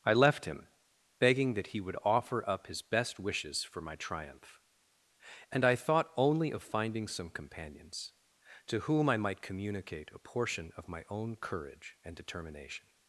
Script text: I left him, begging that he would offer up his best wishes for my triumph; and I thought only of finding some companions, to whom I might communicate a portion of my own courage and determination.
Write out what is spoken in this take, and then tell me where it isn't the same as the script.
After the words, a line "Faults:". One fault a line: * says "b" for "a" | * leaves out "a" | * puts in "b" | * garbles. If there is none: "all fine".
I left him, begging that he would offer up his best wishes for my triumph; and I thought only of finding some companions, to whom I might communicate a portion of my own courage and determination.
Faults:
all fine